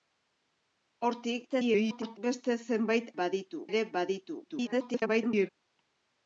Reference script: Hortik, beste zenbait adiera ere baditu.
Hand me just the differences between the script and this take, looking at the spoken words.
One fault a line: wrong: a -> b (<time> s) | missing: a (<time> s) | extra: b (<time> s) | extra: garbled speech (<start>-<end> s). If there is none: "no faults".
extra: garbled speech (1.5-2.2 s)
wrong: adiera -> baditu (3.2 s)
extra: garbled speech (4.4-5.5 s)